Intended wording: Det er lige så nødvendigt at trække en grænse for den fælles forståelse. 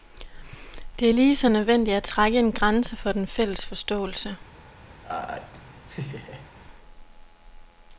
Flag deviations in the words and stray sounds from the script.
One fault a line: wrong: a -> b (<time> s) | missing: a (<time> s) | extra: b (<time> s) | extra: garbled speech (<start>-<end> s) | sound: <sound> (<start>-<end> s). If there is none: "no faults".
sound: laugh (5.0-6.5 s)